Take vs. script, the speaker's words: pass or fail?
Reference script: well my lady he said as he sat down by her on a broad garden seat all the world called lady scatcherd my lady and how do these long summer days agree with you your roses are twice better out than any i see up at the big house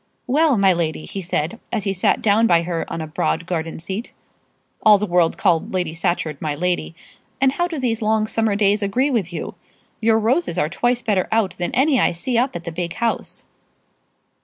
pass